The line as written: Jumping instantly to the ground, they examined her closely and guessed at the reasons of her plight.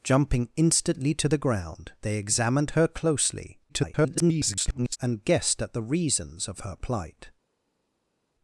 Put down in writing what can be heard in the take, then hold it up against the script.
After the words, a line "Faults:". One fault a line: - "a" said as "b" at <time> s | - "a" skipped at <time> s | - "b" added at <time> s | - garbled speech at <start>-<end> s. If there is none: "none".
Jumping instantly to the ground, they examined her closely [garbled] and guessed at the reasons of her plight.
Faults:
- garbled speech at 3.7-5.0 s